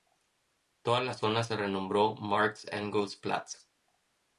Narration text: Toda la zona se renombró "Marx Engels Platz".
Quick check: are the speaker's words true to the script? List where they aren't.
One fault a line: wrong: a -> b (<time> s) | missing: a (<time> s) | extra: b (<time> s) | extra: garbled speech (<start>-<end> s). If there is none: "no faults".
no faults